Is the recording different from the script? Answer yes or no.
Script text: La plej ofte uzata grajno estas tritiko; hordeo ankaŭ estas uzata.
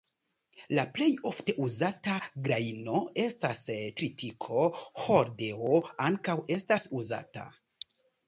no